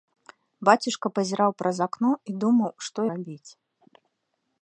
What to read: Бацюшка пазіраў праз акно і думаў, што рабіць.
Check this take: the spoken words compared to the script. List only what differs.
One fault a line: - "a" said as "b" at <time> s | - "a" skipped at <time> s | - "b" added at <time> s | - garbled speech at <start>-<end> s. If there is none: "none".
none